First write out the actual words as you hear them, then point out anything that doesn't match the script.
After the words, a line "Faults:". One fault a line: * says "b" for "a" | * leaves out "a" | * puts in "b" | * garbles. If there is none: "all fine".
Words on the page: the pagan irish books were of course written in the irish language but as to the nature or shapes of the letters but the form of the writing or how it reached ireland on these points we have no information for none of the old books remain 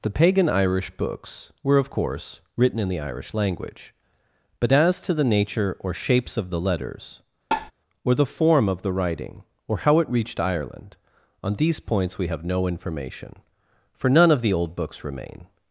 the pagan irish books were of course written in the irish language but as to the nature or shapes of the letters or the form of the writing or how it reached ireland on these points we have no information for none of the old books remain
Faults:
* says "or" for "but"